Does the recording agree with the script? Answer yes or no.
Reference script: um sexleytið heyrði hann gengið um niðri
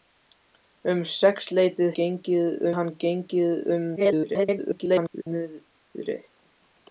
no